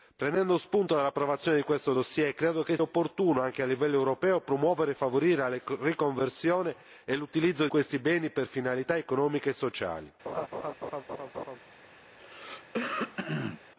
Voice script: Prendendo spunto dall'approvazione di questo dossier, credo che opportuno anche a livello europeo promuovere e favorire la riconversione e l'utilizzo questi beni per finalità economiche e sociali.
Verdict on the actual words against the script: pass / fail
pass